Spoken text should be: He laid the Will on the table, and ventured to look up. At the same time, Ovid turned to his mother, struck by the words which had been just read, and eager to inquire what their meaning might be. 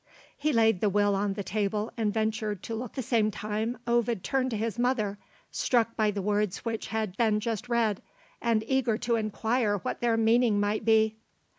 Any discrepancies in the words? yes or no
yes